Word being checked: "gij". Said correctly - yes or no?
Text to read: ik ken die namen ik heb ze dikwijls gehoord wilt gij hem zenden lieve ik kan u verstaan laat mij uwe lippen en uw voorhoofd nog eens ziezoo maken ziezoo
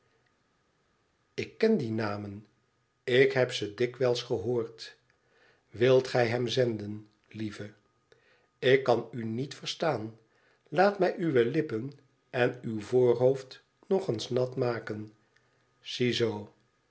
yes